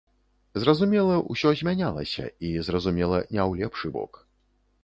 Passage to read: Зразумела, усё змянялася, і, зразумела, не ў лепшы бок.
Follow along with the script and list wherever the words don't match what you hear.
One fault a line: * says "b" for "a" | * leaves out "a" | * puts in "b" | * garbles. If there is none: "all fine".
all fine